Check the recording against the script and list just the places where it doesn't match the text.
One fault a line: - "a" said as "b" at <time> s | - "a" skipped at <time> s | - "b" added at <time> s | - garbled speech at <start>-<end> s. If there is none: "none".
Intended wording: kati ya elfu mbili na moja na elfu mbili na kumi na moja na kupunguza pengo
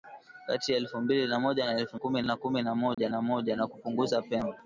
- "mbili" said as "kumi" at 1.9 s
- "moja na" added at 3.2 s